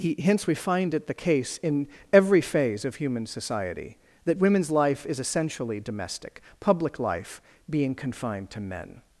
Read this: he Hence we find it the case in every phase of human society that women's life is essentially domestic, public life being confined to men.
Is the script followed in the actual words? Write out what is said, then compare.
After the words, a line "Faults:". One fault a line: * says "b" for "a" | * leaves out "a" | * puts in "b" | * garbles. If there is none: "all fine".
he Hence we find it the case in every phase of human society that women's life is essentially domestic, public life being confined to men.
Faults:
all fine